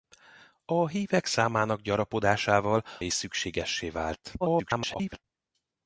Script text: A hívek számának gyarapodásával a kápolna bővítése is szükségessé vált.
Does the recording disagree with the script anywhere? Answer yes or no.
yes